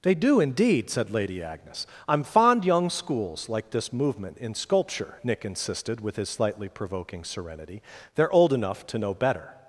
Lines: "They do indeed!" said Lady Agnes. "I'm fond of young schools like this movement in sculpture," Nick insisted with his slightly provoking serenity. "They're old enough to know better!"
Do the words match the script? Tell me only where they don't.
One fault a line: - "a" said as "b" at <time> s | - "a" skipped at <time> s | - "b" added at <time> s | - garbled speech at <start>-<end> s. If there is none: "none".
- "of" skipped at 2.6 s